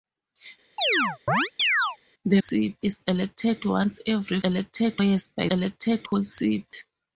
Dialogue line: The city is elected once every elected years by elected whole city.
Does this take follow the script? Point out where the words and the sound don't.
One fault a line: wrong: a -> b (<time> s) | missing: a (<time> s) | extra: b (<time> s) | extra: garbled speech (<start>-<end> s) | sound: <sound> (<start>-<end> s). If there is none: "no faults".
sound: chirp (0.8-2.0 s)